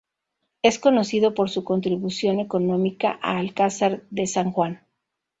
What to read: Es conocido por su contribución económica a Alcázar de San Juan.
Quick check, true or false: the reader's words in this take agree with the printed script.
true